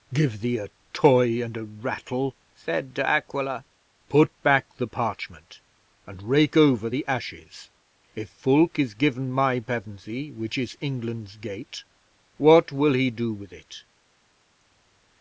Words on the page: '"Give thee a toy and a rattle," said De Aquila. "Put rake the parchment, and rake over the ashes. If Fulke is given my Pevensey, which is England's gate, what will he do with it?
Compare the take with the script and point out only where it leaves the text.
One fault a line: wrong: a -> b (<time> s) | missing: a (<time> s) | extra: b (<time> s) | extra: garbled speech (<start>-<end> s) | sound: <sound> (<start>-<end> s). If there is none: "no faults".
wrong: rake -> back (4.4 s)